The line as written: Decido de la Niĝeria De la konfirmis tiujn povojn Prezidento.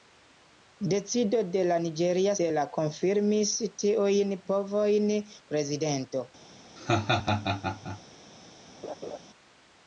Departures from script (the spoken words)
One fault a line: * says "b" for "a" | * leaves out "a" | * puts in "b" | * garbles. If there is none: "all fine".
all fine